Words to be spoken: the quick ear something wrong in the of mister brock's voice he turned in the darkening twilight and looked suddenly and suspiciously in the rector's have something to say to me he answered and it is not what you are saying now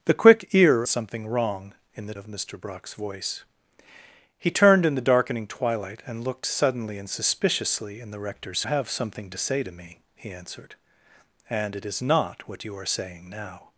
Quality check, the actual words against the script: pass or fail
pass